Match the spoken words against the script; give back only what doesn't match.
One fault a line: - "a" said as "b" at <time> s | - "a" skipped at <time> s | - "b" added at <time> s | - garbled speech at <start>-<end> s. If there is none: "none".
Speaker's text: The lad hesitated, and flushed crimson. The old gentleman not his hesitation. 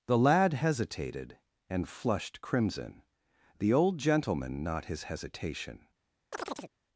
none